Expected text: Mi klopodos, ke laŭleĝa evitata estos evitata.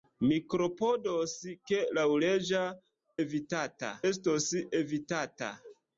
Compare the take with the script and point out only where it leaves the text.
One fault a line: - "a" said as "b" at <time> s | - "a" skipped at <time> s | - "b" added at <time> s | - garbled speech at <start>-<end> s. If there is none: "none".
none